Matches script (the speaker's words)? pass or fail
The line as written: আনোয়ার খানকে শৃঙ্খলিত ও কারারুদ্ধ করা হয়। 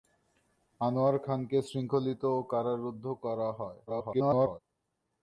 fail